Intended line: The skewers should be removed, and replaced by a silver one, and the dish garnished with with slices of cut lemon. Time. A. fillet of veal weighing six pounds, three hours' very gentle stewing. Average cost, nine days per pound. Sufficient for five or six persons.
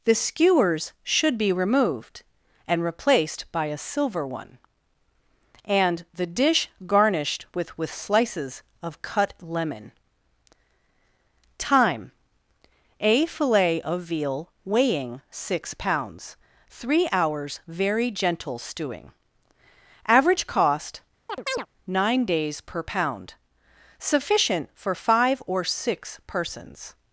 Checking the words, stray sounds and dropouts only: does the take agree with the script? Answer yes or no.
no